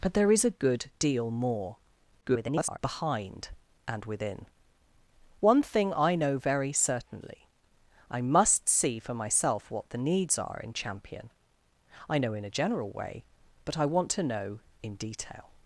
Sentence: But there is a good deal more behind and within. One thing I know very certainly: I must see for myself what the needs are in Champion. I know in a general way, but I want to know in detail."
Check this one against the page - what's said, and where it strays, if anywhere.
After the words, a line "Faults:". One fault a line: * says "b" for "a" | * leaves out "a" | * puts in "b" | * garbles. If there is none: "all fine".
But there is a good deal more [garbled] behind and within. One thing I know very certainly: I must see for myself what the needs are in Champion. I know in a general way, but I want to know in detail."
Faults:
* garbles